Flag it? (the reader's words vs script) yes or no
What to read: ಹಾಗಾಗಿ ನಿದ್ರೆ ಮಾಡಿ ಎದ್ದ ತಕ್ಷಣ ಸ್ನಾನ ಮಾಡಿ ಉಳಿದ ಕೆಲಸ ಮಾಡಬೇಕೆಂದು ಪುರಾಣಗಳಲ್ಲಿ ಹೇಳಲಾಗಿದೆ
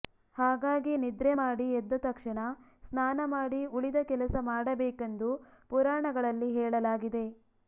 no